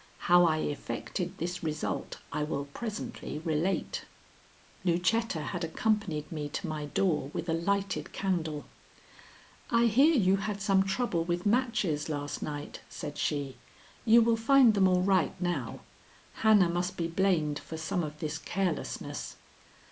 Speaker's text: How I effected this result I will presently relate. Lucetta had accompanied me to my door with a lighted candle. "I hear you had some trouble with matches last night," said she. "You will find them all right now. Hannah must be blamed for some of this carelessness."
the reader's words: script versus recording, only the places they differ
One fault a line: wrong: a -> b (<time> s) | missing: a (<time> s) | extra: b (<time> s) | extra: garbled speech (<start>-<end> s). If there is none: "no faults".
no faults